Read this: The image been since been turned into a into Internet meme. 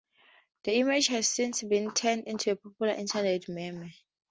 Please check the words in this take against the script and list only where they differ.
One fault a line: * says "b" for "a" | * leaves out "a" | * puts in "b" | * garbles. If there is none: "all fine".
* says "has" for "been"
* says "popular" for "into"